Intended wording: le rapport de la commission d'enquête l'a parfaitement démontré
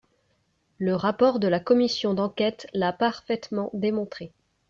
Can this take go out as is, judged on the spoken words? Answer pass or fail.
pass